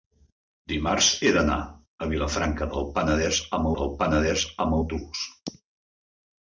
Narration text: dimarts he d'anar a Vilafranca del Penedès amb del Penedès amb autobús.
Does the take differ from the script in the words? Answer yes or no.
no